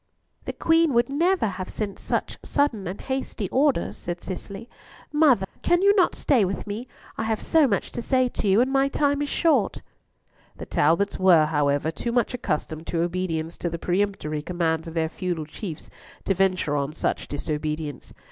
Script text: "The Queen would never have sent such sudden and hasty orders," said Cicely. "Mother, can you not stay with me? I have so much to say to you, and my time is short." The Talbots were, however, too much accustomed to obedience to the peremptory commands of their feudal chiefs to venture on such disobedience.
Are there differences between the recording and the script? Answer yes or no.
no